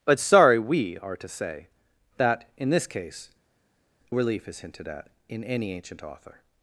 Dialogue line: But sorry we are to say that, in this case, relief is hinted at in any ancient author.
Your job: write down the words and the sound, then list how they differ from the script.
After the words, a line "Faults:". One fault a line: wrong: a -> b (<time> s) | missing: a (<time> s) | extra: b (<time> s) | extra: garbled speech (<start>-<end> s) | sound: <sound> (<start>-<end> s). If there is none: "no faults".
But sorry we are to say that, in this case, relief is hinted at in any ancient author.
Faults:
no faults